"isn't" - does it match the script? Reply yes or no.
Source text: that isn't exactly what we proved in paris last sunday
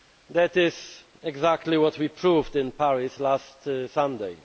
no